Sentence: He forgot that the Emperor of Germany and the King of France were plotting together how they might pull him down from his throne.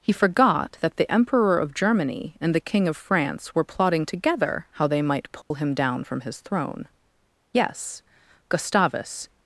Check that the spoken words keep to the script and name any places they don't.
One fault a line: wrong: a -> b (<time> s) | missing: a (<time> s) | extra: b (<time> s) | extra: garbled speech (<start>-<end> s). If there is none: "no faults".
extra: Yes Gustavus (7.5 s)